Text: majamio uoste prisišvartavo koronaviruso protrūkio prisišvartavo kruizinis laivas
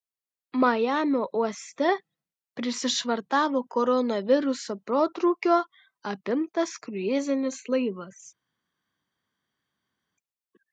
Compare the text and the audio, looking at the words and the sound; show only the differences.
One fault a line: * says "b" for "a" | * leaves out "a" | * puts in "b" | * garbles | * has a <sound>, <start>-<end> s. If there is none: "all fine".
* says "apimtas" for "prisišvartavo"